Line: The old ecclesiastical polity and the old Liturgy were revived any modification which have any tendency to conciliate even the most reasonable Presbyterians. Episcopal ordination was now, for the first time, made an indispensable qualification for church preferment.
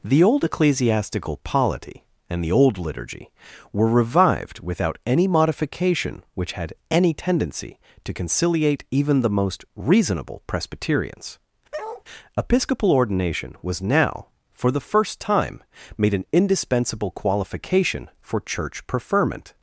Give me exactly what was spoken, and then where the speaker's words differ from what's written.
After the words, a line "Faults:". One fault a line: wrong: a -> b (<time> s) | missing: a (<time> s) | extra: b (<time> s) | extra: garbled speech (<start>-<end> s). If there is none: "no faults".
The old ecclesiastical polity and the old Liturgy were revived without any modification which had any tendency to conciliate even the most reasonable Presbyterians. Episcopal ordination was now, for the first time, made an indispensable qualification for church preferment.
Faults:
extra: without (4.6 s)
wrong: have -> had (6.5 s)